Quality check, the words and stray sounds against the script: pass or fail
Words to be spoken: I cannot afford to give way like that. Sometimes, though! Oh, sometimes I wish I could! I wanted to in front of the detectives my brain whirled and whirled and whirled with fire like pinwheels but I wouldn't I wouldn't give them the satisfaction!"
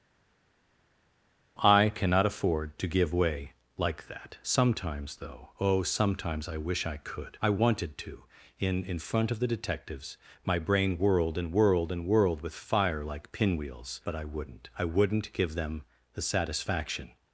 fail